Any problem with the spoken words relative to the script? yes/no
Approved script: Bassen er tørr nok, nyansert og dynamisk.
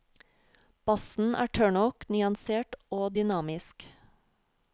no